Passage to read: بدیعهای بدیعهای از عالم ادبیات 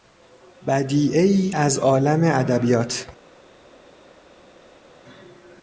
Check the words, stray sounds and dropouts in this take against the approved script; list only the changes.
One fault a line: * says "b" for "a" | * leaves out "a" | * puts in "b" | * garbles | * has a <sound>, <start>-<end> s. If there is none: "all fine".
* leaves out "بدیعهای"